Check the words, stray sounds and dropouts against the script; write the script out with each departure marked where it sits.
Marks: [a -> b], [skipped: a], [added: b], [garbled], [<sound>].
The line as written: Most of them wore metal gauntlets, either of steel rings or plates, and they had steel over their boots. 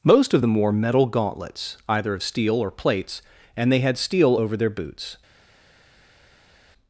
Most of them wore metal gauntlets, either of steel [skipped: rings] or plates, and they had steel over their boots.